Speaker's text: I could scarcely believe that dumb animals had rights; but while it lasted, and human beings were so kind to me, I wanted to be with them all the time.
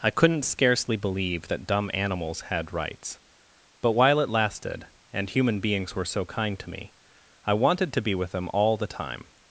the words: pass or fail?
fail